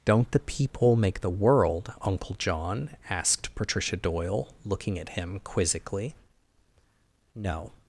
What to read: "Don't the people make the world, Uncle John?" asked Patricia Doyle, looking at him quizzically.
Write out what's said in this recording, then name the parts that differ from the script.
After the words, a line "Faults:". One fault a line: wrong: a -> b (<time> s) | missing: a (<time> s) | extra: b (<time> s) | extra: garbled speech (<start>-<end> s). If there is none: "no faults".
"Don't the people make the world, Uncle John?" asked Patricia Doyle, looking at him quizzically. "No
Faults:
extra: No (7.4 s)